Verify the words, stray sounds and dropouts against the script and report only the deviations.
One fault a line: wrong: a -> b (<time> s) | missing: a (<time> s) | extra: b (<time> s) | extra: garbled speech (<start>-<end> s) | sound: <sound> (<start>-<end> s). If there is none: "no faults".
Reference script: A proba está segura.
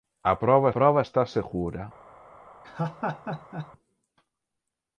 extra: proba (0.7 s)
sound: laugh (2.6-3.7 s)